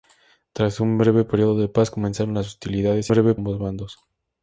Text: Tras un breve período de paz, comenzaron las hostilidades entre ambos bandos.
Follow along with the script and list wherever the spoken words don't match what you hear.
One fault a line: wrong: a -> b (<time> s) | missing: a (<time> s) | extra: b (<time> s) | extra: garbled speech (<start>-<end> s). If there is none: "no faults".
wrong: entre -> breve (3.1 s)